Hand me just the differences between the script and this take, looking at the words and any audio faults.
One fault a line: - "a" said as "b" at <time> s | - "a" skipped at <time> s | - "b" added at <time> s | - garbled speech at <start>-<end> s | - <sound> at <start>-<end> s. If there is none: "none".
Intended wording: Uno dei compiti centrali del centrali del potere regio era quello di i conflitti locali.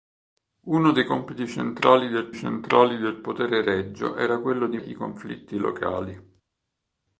none